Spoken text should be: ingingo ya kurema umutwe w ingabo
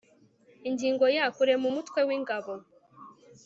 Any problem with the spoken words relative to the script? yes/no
no